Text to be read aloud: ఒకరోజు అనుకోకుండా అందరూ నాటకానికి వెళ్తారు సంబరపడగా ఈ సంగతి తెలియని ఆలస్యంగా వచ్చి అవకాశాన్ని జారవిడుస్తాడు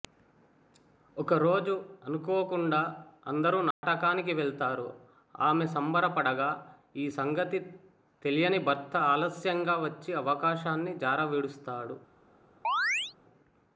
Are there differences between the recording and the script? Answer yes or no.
yes